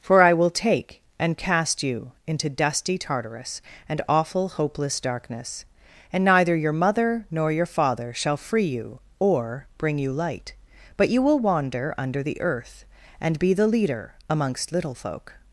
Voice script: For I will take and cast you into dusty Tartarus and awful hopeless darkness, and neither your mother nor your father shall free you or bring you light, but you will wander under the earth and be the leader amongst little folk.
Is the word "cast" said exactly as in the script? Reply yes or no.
yes